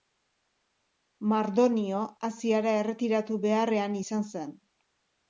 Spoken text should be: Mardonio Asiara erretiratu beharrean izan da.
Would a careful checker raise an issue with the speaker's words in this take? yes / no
yes